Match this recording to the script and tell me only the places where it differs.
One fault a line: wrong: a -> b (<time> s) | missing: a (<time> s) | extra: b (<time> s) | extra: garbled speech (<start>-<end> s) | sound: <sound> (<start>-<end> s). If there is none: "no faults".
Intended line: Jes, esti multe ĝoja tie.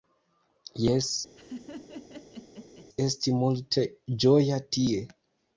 sound: laugh (1.4-2.9 s)